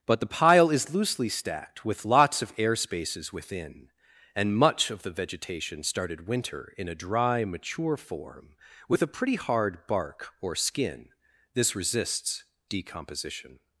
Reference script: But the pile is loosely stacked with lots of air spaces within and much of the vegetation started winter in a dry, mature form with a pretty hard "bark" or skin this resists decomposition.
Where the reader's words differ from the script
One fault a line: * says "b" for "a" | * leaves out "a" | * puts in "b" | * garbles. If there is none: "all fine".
all fine